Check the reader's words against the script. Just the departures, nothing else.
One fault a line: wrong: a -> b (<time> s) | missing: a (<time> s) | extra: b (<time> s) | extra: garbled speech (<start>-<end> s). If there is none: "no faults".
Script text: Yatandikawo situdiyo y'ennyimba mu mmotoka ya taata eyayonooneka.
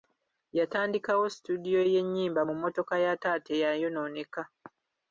no faults